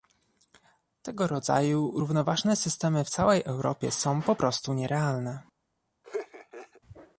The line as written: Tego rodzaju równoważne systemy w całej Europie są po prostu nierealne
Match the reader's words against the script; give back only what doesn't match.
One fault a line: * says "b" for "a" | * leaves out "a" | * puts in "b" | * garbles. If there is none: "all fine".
all fine